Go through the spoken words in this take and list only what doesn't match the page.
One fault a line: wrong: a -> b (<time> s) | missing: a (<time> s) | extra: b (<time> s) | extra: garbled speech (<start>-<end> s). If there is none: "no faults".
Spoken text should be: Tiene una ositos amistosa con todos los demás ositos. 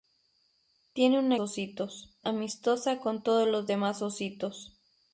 no faults